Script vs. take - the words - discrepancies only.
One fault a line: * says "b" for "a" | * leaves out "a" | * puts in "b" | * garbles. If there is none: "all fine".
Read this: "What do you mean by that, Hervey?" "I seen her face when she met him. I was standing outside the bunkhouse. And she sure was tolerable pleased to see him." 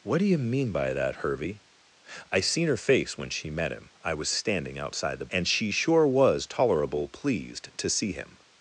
* leaves out "bunkhouse"